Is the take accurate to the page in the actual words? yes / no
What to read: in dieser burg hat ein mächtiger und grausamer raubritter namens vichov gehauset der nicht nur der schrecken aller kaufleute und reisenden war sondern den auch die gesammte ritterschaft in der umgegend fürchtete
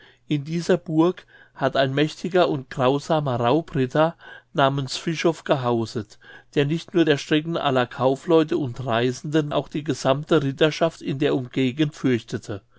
no